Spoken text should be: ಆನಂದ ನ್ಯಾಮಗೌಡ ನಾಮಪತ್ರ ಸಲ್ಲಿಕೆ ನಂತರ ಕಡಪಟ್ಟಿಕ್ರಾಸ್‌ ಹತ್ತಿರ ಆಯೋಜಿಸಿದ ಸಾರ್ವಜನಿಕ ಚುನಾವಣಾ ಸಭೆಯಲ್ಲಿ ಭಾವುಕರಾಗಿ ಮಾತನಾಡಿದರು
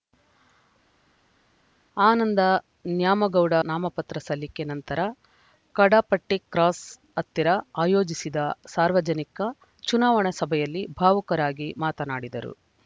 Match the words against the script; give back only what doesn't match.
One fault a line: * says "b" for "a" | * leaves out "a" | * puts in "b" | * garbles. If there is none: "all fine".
all fine